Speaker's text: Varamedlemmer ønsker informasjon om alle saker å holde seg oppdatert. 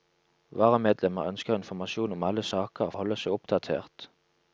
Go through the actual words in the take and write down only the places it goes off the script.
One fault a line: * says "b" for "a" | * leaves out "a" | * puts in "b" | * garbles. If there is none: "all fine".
all fine